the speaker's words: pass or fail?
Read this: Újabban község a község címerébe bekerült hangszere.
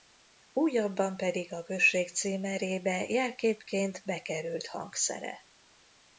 fail